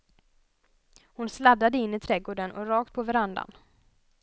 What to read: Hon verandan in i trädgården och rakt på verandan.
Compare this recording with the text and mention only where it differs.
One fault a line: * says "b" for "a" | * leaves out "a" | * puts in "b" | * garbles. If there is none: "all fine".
* says "sladdade" for "verandan"